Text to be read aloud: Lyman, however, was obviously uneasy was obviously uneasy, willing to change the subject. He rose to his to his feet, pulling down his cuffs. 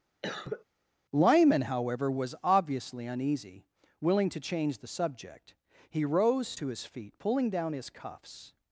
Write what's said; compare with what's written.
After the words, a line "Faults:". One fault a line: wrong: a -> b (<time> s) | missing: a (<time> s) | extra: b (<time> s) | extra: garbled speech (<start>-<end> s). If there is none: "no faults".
Lyman, however, was obviously uneasy, willing to change the subject. He rose to his feet, pulling down his cuffs.
Faults:
missing: was obviously uneasy (3.6 s)
missing: to his (6.8 s)